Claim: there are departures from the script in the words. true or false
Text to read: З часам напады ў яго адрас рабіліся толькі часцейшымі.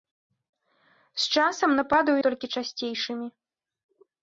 true